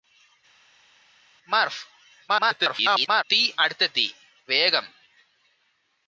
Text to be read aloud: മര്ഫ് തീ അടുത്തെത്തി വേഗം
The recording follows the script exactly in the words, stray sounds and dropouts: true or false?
false